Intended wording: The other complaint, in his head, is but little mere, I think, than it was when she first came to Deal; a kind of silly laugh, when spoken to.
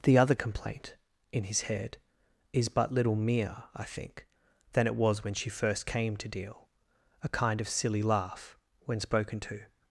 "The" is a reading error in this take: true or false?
false